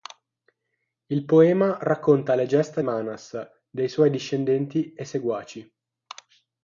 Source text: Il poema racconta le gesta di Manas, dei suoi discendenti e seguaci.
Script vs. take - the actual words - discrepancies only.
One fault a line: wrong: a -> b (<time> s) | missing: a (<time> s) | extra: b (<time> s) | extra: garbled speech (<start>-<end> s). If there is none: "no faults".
missing: di (2.8 s)